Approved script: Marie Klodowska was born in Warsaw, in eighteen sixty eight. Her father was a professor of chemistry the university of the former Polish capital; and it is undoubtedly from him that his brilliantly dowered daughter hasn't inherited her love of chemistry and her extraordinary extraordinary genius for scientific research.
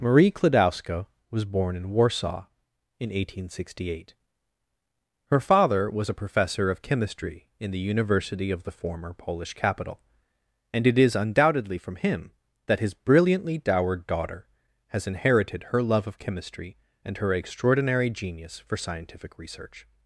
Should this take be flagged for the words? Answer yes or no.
yes